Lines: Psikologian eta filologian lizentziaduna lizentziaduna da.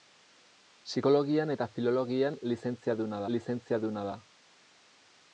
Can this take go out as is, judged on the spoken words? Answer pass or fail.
pass